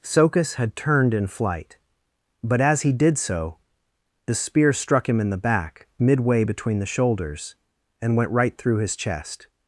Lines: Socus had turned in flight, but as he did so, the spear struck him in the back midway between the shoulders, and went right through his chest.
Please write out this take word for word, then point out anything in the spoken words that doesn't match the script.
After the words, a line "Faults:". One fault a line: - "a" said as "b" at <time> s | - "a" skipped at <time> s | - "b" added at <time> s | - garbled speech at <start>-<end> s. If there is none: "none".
Socus had turned in flight, but as he did so, the spear struck him in the back midway between the shoulders, and went right through his chest.
Faults:
none